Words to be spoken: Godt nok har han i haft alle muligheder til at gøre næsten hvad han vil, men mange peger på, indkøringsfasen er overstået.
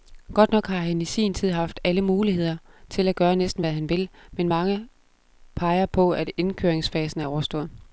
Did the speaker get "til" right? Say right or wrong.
right